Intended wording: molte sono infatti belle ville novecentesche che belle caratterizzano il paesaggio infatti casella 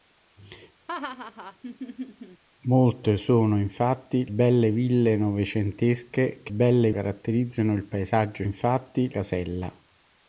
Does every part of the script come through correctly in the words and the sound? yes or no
no